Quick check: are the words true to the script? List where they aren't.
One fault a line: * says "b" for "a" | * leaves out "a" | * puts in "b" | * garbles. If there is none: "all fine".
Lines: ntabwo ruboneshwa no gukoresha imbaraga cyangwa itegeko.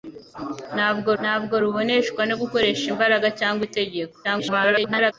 * puts in "ntabwo"
* garbles